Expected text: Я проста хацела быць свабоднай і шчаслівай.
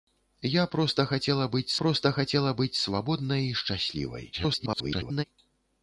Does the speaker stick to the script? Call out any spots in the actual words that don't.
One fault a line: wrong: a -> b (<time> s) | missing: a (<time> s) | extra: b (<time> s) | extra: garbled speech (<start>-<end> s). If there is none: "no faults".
extra: проста хацела быць (1.8 s)
extra: garbled speech (4.3-5.2 s)